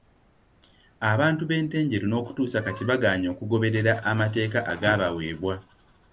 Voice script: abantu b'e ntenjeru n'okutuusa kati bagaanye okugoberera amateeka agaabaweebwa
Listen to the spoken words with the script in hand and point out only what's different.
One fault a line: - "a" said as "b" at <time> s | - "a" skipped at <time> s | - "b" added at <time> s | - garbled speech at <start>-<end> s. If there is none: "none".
none